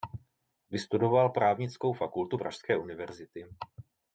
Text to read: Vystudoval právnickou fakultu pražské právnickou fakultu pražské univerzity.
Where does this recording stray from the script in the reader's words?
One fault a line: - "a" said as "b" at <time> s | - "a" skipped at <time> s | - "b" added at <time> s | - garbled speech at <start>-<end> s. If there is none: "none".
- "právnickou fakultu pražské" skipped at 2.8 s